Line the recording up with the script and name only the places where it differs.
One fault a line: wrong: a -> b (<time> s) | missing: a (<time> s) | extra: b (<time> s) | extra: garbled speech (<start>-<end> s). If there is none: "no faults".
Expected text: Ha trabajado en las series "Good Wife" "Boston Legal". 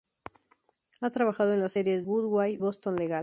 no faults